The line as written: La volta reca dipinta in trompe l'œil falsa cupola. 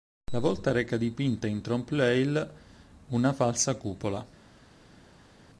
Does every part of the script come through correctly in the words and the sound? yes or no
no